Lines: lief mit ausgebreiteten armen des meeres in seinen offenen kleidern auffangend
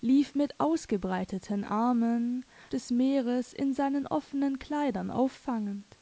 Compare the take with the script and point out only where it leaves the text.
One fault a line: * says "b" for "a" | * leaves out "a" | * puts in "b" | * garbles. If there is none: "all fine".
all fine